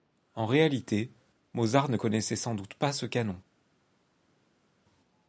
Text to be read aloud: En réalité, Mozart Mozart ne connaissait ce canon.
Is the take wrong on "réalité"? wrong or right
right